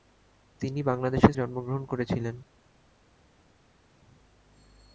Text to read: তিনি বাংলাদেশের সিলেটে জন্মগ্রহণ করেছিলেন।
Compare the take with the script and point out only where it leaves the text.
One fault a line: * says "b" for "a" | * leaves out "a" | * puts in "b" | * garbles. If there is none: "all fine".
* leaves out "সিলেটে"